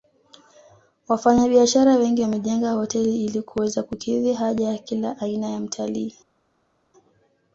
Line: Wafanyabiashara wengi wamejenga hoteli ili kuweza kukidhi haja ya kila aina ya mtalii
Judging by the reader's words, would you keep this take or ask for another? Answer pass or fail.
pass